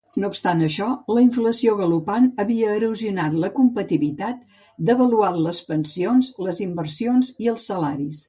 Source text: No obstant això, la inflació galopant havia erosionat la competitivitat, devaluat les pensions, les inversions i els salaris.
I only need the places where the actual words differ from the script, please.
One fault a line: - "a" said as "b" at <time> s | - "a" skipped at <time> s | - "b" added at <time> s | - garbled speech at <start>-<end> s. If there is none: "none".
none